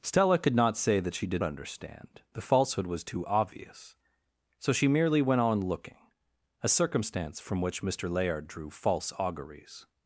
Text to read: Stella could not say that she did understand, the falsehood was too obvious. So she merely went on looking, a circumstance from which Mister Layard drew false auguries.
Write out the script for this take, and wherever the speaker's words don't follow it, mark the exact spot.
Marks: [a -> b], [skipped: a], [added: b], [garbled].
Stella could not say that she did understand, the falsehood was too obvious. So she merely went on looking, a circumstance from which Mister Layard drew false auguries.